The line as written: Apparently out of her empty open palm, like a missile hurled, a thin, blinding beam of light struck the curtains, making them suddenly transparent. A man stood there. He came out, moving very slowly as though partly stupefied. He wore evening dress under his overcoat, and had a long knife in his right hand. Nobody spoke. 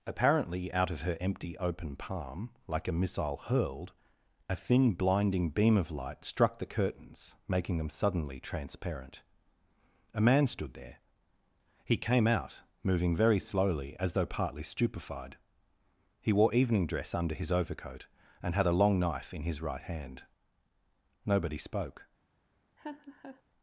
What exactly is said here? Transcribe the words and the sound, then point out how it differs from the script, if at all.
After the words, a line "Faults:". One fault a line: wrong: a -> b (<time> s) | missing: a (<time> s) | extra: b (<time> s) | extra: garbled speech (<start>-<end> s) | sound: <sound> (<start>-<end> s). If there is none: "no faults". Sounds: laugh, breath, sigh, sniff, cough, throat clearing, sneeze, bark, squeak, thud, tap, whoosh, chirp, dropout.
Apparently out of her empty open palm, like a missile hurled, a thin, blinding beam of light struck the curtains, making them suddenly transparent. A man stood there. He came out, moving very slowly as though partly stupefied. He wore evening dress under his overcoat, and had a long knife in his right hand. Nobody spoke.
Faults:
sound: laugh (22.8-23.4 s)